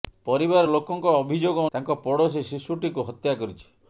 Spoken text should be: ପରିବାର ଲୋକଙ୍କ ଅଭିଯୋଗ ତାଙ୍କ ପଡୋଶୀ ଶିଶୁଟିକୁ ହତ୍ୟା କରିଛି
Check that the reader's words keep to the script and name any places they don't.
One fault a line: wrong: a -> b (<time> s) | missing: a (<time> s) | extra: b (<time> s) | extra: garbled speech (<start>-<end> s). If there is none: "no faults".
no faults